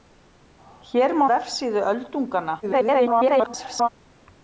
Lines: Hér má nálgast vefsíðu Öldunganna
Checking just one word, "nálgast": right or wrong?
wrong